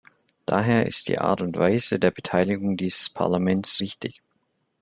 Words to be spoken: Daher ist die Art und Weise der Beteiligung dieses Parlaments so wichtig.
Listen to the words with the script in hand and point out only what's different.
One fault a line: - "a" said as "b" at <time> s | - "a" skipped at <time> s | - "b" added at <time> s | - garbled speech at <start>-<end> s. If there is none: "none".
- "so" skipped at 3.8 s